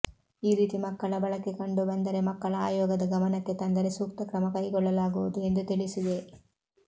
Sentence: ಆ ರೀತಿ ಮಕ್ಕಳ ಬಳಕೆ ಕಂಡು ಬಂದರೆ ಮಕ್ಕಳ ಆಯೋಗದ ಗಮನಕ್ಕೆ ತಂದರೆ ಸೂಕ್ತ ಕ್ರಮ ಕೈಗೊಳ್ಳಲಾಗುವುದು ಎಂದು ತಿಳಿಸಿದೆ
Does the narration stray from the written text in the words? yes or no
yes